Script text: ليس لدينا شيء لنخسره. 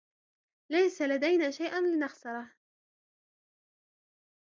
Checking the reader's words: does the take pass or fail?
pass